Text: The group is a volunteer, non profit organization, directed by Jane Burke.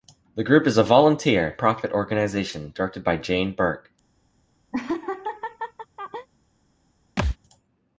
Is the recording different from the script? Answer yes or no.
yes